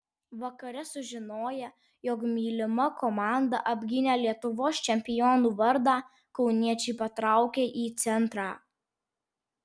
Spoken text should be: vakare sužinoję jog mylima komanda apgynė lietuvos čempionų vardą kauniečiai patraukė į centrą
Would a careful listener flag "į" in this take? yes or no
no